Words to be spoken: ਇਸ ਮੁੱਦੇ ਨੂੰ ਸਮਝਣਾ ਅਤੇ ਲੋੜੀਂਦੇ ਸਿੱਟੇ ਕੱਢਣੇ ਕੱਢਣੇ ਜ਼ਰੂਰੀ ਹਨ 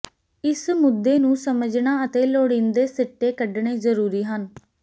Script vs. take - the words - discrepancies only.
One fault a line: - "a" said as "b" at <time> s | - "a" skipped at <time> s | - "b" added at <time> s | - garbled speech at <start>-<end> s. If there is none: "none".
- "ਕੱਢਣੇ" skipped at 3.8 s